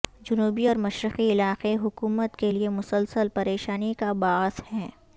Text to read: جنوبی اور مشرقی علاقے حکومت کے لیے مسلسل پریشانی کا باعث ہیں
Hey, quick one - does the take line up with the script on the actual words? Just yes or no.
yes